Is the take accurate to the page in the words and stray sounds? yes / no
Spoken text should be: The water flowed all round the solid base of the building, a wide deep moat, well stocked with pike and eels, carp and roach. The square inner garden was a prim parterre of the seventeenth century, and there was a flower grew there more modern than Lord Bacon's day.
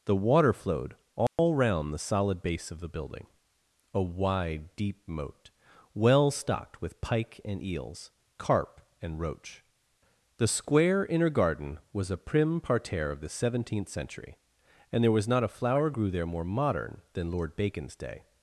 no